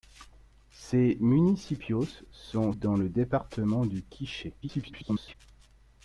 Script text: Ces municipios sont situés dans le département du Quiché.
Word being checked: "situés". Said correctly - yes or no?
no